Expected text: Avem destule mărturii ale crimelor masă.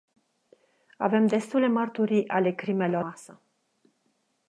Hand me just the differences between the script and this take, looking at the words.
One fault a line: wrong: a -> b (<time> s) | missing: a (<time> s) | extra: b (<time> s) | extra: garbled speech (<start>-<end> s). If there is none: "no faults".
no faults